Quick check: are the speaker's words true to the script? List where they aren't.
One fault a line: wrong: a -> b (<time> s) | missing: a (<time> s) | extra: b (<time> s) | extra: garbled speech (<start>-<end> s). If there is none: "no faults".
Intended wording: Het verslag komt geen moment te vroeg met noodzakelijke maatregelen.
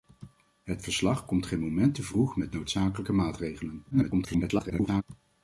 extra: garbled speech (3.9-5.0 s)